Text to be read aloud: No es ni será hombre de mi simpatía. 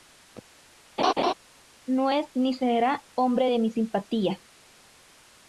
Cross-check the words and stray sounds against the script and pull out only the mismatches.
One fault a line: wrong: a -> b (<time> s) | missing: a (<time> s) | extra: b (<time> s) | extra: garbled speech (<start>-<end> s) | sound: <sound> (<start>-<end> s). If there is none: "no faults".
sound: laugh (1.0-1.3 s)